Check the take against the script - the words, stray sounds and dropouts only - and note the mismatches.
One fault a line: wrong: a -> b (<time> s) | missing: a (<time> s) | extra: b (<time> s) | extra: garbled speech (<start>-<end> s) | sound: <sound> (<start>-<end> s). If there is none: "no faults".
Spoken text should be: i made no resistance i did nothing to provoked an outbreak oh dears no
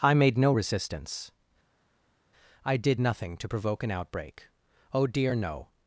wrong: provoked -> provoke (3.5 s)
wrong: dears -> dear (5.1 s)